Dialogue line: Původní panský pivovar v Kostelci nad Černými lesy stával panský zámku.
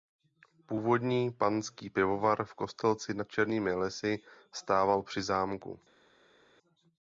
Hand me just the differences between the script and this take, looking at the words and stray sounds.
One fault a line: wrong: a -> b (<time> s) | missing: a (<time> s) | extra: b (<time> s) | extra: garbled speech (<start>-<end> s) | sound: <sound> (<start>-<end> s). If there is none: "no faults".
wrong: panský -> při (5.0 s)